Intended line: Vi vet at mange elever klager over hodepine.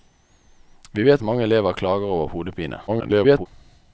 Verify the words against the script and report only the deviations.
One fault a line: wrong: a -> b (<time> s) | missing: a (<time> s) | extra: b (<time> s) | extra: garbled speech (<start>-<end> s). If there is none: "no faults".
missing: at (1.2 s)
extra: garbled speech (2.9-3.5 s)